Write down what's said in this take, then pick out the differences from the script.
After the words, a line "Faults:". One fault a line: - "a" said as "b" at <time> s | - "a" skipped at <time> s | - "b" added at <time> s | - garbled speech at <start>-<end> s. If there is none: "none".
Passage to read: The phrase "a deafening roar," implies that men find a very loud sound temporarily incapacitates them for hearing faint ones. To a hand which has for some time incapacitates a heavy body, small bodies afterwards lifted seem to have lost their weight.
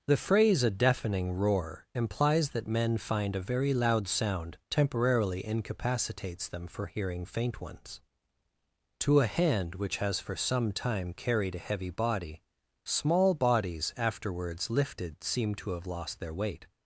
The phrase "a deafening roar," implies that men find a very loud sound temporarily incapacitates them for hearing faint ones. To a hand which has for some time carried a heavy body, small bodies afterwards lifted seem to have lost their weight.
Faults:
- "incapacitates" said as "carried" at 11.1 s